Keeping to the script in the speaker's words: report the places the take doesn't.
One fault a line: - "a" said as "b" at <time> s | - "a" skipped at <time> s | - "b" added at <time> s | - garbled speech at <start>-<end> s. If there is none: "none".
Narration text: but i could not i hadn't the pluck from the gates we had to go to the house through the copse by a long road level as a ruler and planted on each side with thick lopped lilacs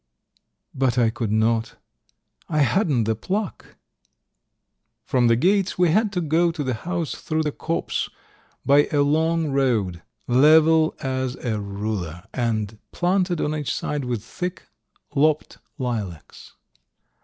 none